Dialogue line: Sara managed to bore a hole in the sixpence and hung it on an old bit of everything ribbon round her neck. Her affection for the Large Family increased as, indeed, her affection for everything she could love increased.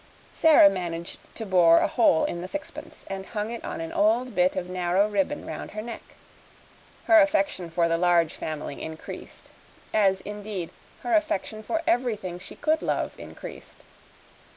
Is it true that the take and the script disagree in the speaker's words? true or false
true